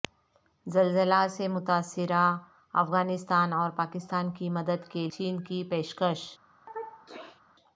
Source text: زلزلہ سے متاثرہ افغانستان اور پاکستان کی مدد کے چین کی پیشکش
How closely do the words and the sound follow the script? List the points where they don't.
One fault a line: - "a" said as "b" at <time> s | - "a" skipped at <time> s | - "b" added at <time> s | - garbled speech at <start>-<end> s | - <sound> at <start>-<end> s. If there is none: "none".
- sneeze at 6.7-7.4 s